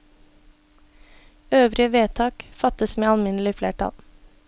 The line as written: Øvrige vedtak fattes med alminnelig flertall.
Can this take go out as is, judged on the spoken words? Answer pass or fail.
pass